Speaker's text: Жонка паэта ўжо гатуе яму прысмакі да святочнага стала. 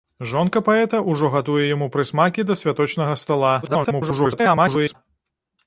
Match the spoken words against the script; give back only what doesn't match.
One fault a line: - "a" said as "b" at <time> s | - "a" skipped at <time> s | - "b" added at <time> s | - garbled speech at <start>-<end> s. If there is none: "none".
- garbled speech at 3.6-5.0 s